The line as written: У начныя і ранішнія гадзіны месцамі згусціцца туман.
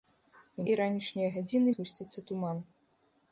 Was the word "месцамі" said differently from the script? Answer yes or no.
yes